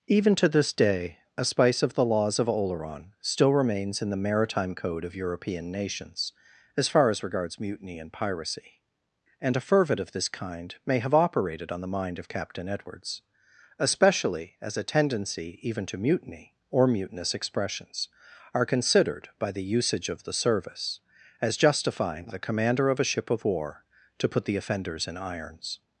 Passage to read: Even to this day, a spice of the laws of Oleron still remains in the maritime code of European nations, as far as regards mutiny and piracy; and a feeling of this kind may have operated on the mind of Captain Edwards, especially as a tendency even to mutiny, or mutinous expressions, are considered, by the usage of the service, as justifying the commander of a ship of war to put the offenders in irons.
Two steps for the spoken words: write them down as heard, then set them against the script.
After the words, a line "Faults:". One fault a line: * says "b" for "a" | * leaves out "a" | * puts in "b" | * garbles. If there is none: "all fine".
Even to this day, a spice of the laws of Oleron still remains in the maritime code of European nations, as far as regards mutiny and piracy; and a fervid of this kind may have operated on the mind of Captain Edwards, especially as a tendency even to mutiny, or mutinous expressions, are considered, by the usage of the service, as justifying the commander of a ship of war to put the offenders in irons.
Faults:
* says "fervid" for "feeling"